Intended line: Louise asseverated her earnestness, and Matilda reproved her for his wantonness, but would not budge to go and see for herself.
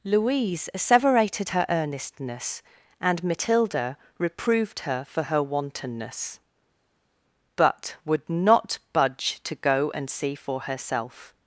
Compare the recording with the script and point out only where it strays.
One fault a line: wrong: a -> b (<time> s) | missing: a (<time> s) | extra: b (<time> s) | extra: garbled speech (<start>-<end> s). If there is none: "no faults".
wrong: his -> her (5.2 s)